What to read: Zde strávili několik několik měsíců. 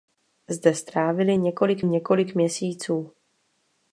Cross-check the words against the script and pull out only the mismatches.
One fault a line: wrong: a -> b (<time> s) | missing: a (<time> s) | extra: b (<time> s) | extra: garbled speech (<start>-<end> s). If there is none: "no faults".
no faults